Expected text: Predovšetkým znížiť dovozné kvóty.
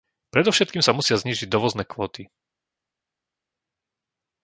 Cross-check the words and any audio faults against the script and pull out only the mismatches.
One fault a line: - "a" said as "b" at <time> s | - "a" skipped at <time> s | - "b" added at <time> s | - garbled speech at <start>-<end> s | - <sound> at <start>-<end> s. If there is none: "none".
- "sa musia" added at 0.8 s